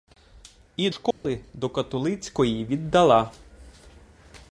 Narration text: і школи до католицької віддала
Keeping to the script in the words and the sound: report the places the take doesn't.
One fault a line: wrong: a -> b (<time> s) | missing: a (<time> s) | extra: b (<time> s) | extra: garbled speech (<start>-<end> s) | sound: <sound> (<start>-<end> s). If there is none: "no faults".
sound: dropout (1.1-1.2 s)